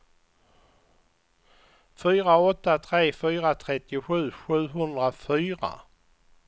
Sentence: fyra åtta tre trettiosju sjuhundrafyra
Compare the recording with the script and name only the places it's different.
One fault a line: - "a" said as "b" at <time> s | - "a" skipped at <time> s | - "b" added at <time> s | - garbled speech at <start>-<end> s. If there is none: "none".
- "fyra" added at 3.2 s